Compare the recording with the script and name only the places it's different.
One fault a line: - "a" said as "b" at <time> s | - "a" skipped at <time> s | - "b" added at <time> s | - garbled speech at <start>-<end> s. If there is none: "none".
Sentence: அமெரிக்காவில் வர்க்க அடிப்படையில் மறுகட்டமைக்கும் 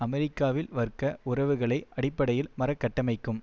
- "உறவுகளை" added at 1.2 s